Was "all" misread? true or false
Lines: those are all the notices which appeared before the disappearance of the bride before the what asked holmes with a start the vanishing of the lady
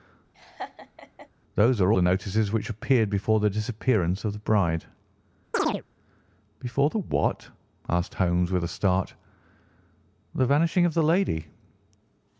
true